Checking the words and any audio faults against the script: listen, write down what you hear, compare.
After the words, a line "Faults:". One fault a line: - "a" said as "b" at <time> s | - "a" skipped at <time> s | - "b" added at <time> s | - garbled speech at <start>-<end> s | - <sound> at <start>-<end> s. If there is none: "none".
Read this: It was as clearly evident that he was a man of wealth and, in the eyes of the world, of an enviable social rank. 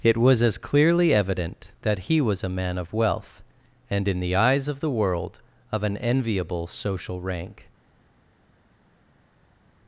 It was as clearly evident that he was a man of wealth and, in the eyes of the world, of an enviable social rank.
Faults:
none